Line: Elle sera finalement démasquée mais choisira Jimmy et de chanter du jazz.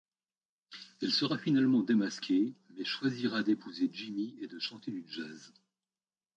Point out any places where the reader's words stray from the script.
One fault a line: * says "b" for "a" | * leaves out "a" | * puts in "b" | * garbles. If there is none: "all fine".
* puts in "d'épouser"